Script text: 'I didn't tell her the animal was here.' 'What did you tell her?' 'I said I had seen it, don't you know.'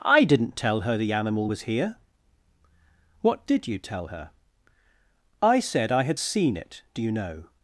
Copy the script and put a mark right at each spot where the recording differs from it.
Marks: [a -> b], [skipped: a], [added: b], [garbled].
'I didn't tell her the animal was here.' 'What did you tell her?' 'I said I had seen it, [don't -> do] you know.'